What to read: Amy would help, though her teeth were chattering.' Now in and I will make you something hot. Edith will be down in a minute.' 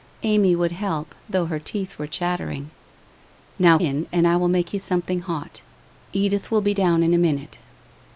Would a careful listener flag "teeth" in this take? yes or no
no